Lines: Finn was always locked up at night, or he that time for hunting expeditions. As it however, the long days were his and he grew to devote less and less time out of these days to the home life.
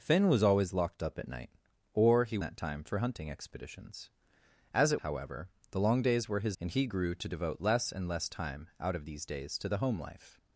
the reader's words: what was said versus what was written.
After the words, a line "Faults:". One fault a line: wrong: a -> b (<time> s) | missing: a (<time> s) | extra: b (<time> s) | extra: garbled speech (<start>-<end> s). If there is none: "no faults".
Finn was always locked up at night, or he that time for hunting expeditions. As it however, the long days were his and he grew to devote less and less time out of these days to the home life.
Faults:
no faults